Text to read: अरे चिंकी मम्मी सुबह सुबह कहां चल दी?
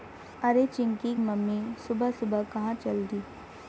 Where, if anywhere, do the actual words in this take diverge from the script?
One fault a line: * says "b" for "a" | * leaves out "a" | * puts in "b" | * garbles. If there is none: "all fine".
all fine